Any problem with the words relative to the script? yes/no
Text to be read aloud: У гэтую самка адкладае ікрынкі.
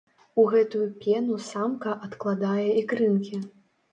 yes